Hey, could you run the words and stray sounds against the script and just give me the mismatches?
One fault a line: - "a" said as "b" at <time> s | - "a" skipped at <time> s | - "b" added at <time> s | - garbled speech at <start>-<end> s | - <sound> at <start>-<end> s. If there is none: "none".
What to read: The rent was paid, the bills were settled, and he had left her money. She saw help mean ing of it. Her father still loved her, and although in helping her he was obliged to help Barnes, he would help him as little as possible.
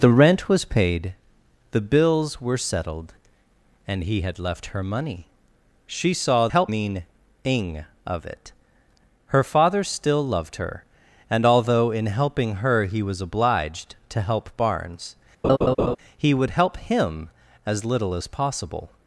- laugh at 15.4-16.0 s